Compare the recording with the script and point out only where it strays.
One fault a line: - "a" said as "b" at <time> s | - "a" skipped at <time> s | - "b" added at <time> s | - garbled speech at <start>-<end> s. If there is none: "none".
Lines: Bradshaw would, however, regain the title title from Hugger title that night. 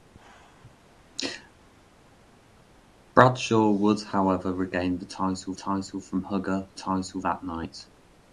none